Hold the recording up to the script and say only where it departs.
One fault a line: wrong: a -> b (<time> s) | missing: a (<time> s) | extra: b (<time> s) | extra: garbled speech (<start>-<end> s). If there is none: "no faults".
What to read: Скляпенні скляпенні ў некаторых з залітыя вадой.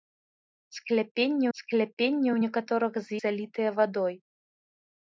no faults